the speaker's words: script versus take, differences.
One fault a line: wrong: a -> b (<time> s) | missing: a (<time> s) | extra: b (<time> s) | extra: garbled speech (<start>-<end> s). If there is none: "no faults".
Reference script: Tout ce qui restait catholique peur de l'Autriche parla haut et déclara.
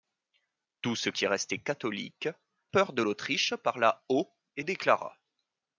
no faults